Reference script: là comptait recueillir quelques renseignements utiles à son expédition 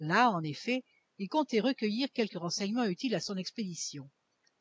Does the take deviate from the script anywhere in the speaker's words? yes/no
yes